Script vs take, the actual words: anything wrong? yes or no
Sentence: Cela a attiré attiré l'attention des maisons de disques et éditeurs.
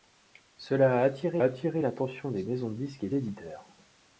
no